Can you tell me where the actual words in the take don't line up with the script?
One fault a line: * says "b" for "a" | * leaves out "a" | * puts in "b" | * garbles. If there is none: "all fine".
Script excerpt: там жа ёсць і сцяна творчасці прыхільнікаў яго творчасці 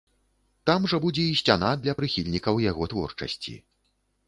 * says "будзе" for "ёсць"
* says "для" for "творчасці"